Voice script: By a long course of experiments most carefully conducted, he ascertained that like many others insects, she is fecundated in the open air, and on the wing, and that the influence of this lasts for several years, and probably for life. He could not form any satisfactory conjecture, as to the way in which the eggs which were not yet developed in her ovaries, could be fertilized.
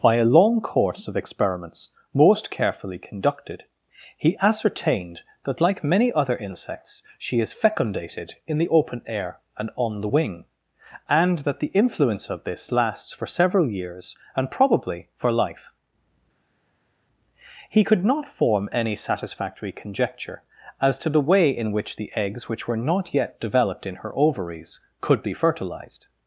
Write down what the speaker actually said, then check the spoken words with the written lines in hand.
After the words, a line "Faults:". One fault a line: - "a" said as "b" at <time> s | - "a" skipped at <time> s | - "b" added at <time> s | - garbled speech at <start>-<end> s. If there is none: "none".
By a long course of experiments most carefully conducted, he ascertained that like many other insects, she is fecundated in the open air, and on the wing, and that the influence of this lasts for several years, and probably for life. He could not form any satisfactory conjecture, as to the way in which the eggs which were not yet developed in her ovaries, could be fertilized.
Faults:
- "others" said as "other" at 6.1 s